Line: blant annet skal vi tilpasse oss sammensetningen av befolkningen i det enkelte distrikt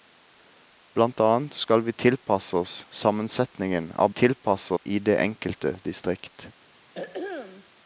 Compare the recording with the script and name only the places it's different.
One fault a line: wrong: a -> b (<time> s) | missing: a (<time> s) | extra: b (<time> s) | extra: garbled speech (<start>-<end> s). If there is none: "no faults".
wrong: befolkningen -> tilpasse (4.1 s)